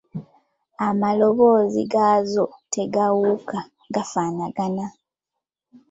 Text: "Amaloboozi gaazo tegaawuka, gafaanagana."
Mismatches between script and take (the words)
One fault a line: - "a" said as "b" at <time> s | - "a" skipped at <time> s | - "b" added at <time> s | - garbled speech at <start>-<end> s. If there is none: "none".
none